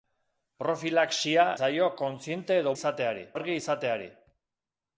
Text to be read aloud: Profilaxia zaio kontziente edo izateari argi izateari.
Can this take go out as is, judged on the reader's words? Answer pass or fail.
pass